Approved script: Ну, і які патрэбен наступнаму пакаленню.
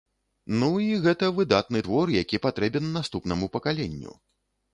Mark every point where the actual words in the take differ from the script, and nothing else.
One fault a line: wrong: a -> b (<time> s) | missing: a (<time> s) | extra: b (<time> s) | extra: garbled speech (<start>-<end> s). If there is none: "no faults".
extra: гэта выдатны твор (1.0 s)